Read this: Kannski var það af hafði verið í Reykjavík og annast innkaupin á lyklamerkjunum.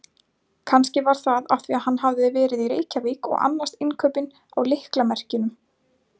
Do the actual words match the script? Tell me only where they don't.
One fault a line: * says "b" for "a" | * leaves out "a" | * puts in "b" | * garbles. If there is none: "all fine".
* puts in "því hann"